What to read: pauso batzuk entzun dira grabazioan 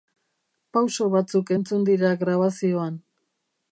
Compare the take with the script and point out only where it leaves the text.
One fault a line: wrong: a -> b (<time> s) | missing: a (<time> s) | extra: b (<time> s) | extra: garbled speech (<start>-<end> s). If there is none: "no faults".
no faults